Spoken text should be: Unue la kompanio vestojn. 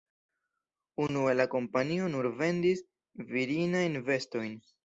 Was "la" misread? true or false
false